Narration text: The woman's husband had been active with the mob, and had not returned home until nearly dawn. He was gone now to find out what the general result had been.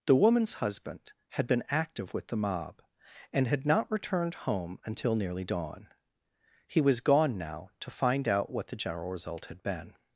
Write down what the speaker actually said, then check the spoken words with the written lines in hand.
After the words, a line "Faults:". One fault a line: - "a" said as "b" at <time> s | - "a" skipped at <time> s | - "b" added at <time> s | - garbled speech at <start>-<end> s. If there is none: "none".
The woman's husband had been active with the mob, and had not returned home until nearly dawn. He was gone now to find out what the general result had been.
Faults:
none